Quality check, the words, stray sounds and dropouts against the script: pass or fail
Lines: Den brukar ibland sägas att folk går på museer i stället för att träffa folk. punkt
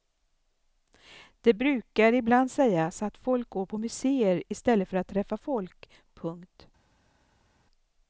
fail